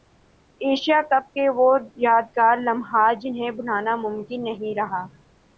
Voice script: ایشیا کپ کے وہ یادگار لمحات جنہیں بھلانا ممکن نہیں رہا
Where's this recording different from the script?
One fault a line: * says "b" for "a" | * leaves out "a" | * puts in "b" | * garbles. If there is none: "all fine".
all fine